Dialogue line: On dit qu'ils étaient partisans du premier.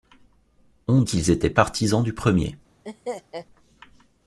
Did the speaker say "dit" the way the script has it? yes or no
no